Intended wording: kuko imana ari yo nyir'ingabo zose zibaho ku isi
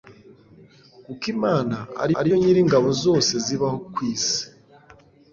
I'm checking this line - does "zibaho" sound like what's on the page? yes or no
yes